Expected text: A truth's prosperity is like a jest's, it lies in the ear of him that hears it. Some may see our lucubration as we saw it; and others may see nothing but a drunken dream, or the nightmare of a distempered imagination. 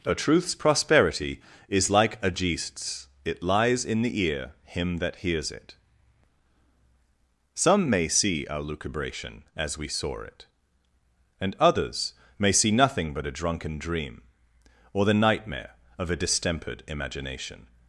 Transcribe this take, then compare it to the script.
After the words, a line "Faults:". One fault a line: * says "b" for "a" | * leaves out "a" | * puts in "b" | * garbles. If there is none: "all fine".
A truth's prosperity is like a jest's, it lies in the ear him that hears it. Some may see our lucubration as we saw it; and others may see nothing but a drunken dream, or the nightmare of a distempered imagination.
Faults:
* leaves out "of"